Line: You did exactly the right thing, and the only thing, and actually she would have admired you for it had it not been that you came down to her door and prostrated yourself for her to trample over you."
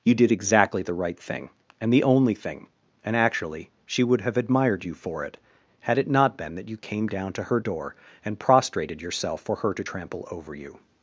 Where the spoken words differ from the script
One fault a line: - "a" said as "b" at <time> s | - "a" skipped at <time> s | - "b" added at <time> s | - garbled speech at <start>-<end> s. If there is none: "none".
none